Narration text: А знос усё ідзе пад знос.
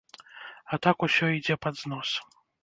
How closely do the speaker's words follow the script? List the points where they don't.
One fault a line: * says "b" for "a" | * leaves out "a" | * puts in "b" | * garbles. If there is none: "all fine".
* says "так" for "знос"